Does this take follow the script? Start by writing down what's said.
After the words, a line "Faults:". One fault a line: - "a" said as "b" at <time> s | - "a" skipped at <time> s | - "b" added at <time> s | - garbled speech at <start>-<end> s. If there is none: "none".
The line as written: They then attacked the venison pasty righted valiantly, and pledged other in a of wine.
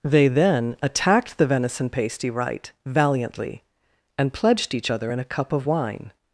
They then attacked the venison pasty right valiantly, and pledged each other in a cup of wine.
Faults:
- "righted" said as "right" at 2.3 s
- "each" added at 4.7 s
- "cup" added at 5.2 s